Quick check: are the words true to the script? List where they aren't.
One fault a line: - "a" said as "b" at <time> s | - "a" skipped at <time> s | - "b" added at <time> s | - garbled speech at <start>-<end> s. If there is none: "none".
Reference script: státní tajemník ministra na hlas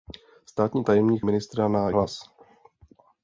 none